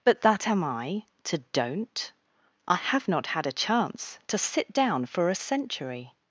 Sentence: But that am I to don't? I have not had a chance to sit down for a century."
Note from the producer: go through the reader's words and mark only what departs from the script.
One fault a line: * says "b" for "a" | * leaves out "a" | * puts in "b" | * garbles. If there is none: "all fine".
all fine